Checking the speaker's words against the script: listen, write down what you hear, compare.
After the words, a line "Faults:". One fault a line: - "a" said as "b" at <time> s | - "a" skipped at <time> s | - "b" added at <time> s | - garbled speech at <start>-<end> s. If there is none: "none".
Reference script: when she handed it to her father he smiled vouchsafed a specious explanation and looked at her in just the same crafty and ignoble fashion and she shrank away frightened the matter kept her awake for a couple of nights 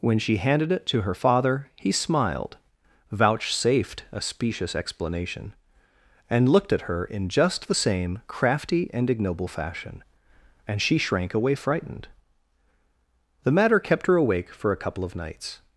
when she handed it to her father he smiled vouchsafed a specious explanation and looked at her in just the same crafty and ignoble fashion and she shrank away frightened the matter kept her awake for a couple of nights
Faults:
none